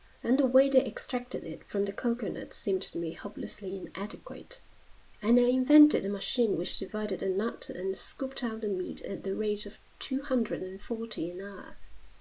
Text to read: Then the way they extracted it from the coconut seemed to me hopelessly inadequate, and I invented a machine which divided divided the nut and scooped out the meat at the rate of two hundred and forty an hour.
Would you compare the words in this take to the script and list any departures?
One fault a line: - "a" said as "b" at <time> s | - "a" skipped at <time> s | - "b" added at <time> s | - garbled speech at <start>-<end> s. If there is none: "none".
- "divided" skipped at 7.2 s